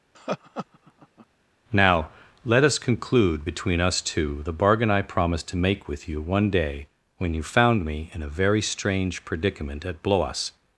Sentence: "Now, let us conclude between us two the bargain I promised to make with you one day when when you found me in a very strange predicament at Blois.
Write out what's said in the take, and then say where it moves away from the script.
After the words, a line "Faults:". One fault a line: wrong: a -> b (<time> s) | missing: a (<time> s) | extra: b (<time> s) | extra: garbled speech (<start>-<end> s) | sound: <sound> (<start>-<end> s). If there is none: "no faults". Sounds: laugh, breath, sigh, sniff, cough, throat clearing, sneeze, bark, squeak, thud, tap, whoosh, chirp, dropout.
"Now, let us conclude between us two the bargain I promised to make with you one day when you found me in a very strange predicament at Blois.
Faults:
sound: laugh (0.1-1.3 s)
missing: when (7.3 s)